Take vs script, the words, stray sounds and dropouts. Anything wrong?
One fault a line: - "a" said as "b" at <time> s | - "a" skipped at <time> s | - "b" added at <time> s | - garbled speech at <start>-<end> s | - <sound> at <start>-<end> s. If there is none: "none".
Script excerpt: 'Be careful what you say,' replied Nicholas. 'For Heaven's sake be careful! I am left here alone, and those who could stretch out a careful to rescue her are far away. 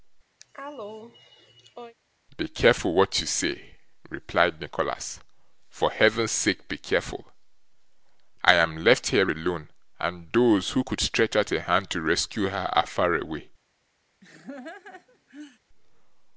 - cough at 0.4-1.9 s
- "careful" said as "hand" at 11.6 s
- laugh at 14.2-15.6 s